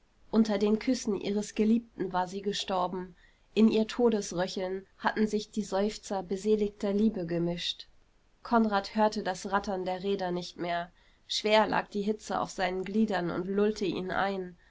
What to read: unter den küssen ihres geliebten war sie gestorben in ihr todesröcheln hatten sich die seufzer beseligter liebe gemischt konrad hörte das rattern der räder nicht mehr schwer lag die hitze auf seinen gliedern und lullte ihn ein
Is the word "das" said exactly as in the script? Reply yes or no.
yes